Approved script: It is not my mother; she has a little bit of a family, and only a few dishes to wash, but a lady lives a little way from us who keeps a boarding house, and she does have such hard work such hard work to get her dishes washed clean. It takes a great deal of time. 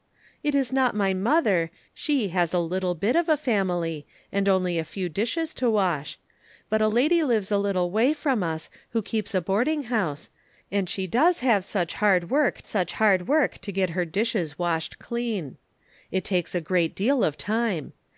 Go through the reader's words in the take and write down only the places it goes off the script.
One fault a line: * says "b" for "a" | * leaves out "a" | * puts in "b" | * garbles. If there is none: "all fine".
all fine